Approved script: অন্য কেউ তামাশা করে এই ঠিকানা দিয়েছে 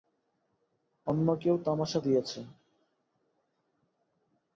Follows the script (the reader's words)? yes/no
no